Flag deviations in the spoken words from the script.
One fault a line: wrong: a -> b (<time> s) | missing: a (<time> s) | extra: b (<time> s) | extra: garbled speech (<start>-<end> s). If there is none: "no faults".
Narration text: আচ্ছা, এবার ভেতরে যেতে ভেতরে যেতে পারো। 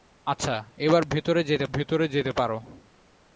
no faults